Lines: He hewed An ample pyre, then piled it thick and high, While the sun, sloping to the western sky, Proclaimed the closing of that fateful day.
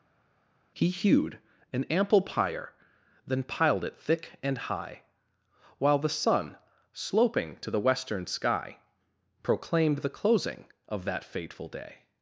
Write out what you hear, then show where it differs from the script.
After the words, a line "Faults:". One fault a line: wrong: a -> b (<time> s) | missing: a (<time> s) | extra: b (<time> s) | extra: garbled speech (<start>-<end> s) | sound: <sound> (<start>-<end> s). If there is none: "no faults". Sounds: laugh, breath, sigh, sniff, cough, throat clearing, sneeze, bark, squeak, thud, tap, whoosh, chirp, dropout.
He hewed An ample pyre, then piled it thick and high, While the sun, sloping to the western sky, Proclaimed the closing of that fateful day.
Faults:
no faults